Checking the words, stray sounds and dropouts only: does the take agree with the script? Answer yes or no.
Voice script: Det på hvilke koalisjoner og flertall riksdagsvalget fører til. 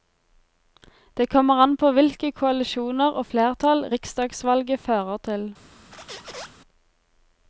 no